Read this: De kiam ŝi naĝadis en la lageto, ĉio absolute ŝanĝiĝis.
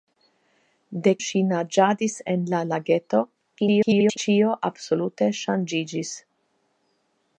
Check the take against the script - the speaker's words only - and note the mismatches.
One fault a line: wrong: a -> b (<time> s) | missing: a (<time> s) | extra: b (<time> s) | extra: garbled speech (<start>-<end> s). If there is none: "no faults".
missing: kiam (1.1 s)
extra: garbled speech (3.6-4.2 s)